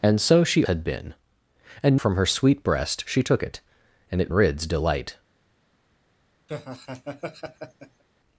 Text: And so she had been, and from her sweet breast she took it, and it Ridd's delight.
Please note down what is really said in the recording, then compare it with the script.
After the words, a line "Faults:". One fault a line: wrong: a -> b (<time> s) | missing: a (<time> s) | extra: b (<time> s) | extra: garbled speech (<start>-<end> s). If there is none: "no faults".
And so she had been, and from her sweet breast she took it, and it Ridd's delight.
Faults:
no faults